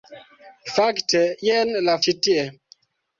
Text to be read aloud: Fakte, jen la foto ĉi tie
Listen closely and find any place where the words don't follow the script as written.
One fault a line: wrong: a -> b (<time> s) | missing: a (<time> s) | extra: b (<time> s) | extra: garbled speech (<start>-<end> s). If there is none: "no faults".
missing: foto (2.0 s)